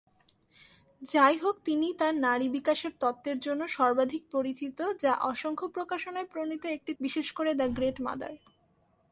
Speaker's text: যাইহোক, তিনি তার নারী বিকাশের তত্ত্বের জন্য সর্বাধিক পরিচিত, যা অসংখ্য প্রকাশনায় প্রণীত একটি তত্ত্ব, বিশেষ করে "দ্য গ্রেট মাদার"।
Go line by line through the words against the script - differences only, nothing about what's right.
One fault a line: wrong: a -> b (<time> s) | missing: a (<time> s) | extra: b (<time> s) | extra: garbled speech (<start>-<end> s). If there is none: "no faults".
missing: তত্ত্ব (6.9 s)